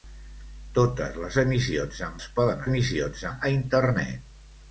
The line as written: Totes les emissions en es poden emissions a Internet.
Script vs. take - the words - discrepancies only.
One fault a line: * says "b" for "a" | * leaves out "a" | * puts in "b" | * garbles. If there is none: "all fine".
all fine